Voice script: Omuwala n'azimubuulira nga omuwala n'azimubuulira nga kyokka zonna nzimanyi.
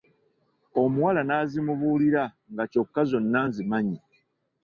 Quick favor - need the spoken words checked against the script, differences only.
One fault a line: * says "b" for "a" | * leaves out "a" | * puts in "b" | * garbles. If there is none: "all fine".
* leaves out "omuwala n'azimubuulira nga"